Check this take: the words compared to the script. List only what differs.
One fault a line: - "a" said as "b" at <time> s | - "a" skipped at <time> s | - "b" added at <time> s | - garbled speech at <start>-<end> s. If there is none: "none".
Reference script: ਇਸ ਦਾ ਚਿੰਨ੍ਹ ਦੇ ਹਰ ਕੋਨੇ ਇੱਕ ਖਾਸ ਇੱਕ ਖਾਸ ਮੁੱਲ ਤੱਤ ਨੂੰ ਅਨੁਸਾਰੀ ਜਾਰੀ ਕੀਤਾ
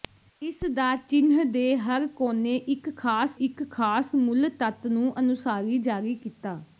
none